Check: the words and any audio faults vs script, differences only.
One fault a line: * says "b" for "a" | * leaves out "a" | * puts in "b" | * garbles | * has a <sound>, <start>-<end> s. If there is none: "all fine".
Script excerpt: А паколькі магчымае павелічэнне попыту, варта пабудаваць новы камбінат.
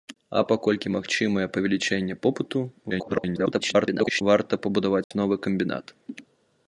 * garbles
* has a dropout, 5.0-5.1 s